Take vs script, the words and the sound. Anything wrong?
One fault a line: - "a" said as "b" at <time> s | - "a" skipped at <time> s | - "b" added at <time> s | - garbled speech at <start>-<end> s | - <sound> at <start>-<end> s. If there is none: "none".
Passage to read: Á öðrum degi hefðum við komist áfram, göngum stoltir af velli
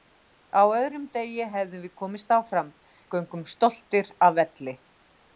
none